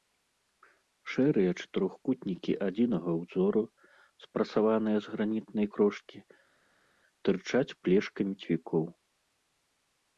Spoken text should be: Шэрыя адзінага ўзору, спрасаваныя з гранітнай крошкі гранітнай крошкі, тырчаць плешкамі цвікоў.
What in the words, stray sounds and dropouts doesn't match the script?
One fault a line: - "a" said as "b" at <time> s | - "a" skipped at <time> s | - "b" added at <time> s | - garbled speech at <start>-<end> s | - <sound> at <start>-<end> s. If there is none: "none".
- "чатырохкутнікі" added at 1.6 s
- "гранітнай крошкі" skipped at 6.2 s